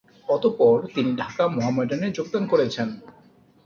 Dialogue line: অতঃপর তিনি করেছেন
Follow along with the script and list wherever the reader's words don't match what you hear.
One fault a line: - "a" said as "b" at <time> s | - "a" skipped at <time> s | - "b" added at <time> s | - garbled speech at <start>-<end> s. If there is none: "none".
- "ঢাকা মোহামেডানে যোগদান" added at 1.1 s